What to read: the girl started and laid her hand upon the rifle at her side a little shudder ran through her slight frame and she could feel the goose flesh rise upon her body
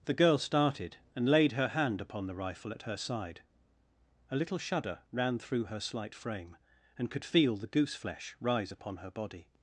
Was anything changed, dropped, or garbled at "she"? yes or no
yes